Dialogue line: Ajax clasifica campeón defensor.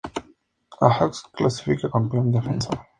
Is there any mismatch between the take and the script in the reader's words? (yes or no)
no